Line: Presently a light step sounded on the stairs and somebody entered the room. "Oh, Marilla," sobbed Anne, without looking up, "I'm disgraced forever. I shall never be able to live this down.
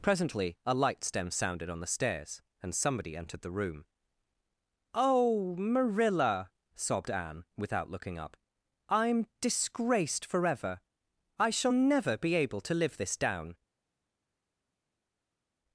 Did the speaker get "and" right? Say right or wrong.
right